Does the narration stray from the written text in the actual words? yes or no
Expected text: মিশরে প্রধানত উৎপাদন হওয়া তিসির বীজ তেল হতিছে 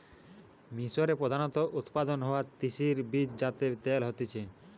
yes